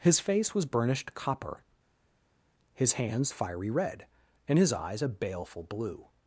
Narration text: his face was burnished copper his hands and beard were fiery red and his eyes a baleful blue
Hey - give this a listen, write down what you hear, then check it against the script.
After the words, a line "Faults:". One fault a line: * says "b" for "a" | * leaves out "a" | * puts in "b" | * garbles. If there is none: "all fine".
his face was burnished copper his hands fiery red and his eyes a baleful blue
Faults:
* leaves out "and beard were"